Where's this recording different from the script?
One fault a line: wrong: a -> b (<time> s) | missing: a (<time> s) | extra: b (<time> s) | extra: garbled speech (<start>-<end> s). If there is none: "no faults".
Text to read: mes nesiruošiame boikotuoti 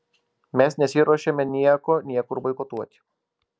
extra: nieko niekur (1.5 s)